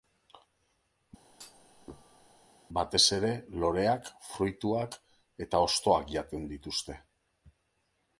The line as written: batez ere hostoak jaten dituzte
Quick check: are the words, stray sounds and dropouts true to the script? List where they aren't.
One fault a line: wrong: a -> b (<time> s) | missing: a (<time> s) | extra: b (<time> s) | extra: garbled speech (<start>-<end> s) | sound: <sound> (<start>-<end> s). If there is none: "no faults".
sound: thud (1.3-2.5 s)
extra: loreak fruituak eta (3.6 s)